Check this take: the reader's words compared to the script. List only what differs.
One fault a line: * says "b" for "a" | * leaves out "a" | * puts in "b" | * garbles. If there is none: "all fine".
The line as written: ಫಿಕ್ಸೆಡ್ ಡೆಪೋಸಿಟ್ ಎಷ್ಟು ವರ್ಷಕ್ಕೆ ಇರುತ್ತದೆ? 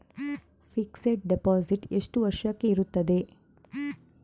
all fine